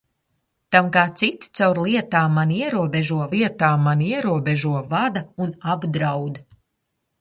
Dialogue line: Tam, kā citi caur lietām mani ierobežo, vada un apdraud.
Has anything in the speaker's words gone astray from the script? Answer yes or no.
yes